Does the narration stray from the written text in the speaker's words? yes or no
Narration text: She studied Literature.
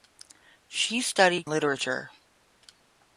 no